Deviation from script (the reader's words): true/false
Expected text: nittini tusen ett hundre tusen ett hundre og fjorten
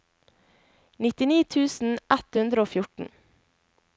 true